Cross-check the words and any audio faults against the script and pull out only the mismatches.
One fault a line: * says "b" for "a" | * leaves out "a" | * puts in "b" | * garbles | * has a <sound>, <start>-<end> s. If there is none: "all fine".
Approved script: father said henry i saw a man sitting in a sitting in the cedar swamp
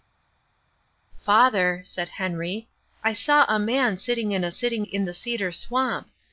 all fine